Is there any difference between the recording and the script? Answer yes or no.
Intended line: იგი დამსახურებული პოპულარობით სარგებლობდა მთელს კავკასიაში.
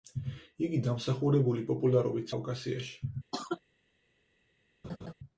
yes